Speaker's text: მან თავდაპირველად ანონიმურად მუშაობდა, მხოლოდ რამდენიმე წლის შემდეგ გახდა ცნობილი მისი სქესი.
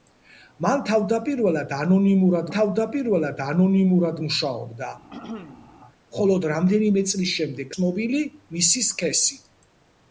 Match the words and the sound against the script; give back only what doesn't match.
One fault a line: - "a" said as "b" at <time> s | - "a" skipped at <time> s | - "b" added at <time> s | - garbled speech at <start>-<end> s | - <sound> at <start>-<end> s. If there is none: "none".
- "თავდაპირველად ანონიმურად" added at 2.5 s
- throat clearing at 5.1-5.7 s
- "გახდა" skipped at 7.7 s